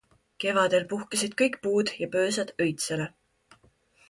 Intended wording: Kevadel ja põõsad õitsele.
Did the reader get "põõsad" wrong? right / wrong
right